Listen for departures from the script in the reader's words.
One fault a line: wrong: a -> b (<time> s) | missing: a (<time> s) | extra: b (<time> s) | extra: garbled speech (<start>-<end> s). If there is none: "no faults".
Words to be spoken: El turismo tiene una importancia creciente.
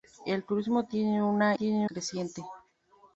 wrong: importancia -> tiene (1.5 s)